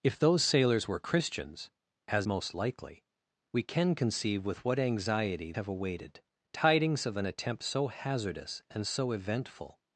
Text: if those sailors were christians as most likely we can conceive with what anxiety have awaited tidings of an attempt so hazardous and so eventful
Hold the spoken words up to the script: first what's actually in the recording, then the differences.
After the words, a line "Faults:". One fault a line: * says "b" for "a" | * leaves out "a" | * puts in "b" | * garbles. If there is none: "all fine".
if those sailors were christians as most likely we can conceive with what anxiety have awaited tidings of an attempt so hazardous and so eventful
Faults:
all fine